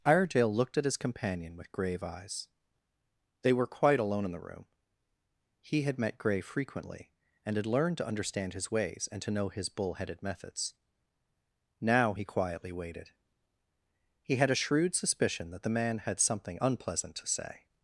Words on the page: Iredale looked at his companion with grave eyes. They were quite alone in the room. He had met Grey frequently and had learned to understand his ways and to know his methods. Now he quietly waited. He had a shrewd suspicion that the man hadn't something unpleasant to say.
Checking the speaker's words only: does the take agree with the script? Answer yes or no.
no